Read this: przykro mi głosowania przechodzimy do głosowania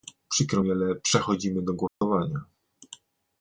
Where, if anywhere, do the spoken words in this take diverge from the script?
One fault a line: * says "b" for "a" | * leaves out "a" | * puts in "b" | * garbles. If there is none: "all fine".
* says "ale" for "głosowania"